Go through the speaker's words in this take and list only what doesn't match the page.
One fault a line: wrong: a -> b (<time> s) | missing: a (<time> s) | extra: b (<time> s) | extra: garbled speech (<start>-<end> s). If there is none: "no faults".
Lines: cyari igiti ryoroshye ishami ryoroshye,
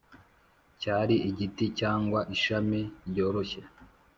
wrong: ryoroshye -> cyangwa (1.8 s)